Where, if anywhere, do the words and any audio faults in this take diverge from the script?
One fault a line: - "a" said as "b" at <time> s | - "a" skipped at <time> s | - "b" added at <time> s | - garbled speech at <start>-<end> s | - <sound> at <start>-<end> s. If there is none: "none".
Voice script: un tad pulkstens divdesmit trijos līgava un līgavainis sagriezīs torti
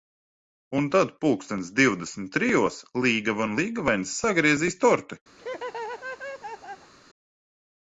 - laugh at 5.4-6.9 s